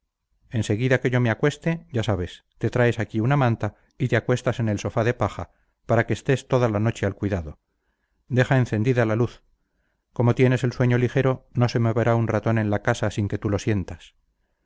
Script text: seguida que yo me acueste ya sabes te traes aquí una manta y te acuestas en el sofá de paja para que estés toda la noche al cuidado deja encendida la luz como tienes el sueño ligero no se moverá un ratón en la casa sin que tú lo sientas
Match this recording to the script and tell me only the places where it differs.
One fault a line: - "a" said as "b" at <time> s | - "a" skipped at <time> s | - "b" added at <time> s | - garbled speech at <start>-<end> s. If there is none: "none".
none